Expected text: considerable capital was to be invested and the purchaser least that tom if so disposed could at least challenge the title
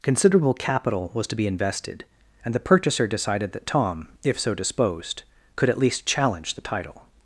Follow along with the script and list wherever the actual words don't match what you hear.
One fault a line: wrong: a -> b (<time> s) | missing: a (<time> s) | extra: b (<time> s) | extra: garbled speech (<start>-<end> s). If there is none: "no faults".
wrong: least -> decided (3.0 s)